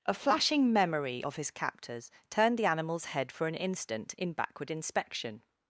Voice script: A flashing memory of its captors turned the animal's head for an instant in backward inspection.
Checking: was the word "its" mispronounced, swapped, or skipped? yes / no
yes